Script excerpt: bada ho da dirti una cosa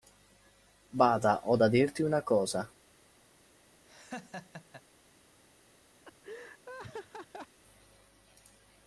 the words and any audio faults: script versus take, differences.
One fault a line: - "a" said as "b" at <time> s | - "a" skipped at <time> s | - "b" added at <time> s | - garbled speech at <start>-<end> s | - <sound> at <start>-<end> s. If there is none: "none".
- laugh at 3.9-4.8 s
- laugh at 6.0-7.6 s